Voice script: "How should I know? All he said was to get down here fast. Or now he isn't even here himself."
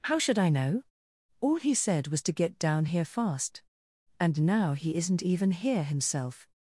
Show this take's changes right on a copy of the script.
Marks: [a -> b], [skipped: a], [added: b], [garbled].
"How should I know? All he said was to get down here fast. [Or -> And] now he isn't even here himself."